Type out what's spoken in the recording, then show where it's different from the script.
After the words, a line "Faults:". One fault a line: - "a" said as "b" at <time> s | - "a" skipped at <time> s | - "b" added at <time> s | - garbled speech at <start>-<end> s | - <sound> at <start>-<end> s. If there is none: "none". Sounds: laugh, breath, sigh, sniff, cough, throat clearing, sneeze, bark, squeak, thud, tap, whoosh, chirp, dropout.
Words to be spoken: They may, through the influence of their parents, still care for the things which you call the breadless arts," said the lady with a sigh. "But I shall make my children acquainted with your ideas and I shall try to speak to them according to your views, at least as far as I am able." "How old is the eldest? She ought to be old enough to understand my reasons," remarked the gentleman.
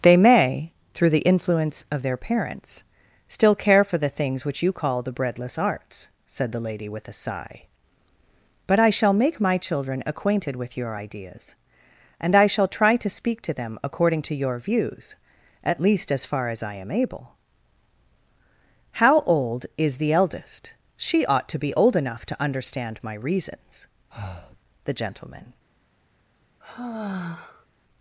They may, through the influence of their parents, still care for the things which you call the breadless arts," said the lady with a sigh. "But I shall make my children acquainted with your ideas and I shall try to speak to them according to your views, at least as far as I am able." "How old is the eldest? She ought to be old enough to understand my reasons," the gentleman.
Faults:
- "remarked" skipped at 23.9 s
- breath at 24.1-24.6 s
- sigh at 26.6-27.7 s